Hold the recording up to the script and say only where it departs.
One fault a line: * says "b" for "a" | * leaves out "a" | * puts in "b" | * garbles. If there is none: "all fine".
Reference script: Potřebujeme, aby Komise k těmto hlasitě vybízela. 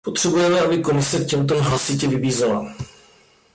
all fine